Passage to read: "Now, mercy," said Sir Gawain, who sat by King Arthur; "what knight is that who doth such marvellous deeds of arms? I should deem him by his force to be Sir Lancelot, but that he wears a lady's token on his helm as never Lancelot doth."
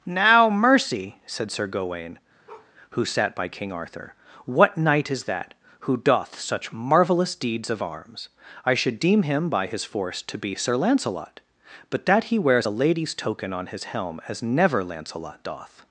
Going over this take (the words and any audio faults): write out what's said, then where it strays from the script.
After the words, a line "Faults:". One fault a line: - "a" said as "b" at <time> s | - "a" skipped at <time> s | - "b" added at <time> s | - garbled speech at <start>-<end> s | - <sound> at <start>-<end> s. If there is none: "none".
"Now, mercy," said Sir Gawain, who sat by King Arthur; "what knight is that who doth such marvellous deeds of arms? I should deem him by his force to be Sir Lancelot, but that he wears a lady's token on his helm as never Lancelot doth."
Faults:
- bark at 2.5-2.7 s